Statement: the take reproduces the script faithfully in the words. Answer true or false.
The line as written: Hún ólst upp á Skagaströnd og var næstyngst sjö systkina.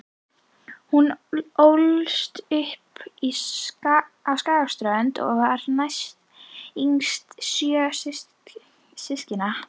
true